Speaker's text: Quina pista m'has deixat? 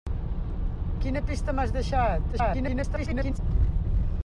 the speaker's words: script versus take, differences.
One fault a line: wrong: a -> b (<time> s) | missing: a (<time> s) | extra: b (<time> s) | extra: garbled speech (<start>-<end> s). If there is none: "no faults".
extra: garbled speech (2.3-3.4 s)